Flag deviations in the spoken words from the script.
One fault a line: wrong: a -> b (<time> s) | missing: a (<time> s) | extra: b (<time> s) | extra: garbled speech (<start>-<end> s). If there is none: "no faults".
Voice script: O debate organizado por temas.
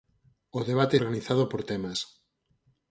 no faults